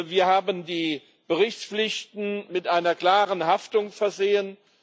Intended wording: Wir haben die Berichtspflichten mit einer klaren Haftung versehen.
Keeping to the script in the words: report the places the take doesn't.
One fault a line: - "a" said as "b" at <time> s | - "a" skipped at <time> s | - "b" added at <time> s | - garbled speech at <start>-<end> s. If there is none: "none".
none